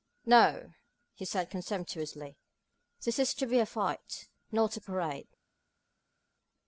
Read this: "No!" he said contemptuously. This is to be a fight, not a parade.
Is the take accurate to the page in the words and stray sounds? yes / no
yes